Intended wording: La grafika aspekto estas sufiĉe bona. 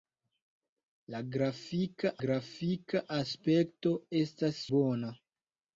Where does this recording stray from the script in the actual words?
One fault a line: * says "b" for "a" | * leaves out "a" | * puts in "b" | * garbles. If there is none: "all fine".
* puts in "grafika"
* leaves out "sufiĉe"